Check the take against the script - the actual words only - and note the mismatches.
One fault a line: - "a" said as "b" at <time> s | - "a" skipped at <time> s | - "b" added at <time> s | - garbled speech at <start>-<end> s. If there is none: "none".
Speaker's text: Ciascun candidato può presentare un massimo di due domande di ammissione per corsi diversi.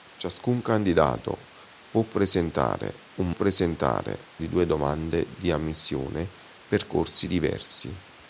- "massimo" said as "presentare" at 3.3 s